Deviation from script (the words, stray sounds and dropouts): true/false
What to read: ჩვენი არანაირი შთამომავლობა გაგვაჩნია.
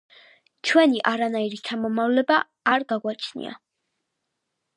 true